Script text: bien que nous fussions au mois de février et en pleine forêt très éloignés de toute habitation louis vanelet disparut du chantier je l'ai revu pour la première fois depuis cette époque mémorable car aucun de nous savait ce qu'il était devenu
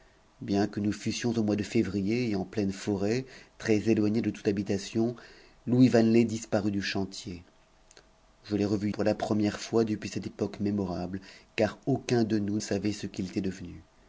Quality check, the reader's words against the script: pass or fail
pass